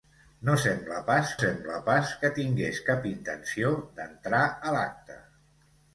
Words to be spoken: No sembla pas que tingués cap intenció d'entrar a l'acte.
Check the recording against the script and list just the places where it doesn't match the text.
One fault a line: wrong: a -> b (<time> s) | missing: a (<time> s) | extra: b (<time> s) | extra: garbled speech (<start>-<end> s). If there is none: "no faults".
extra: sembla pas (1.4 s)